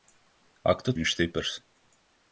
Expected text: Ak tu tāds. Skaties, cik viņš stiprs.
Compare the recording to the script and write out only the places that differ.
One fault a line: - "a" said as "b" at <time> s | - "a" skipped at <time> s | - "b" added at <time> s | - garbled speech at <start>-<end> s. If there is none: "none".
- "tāds Skaties cik" skipped at 0.9 s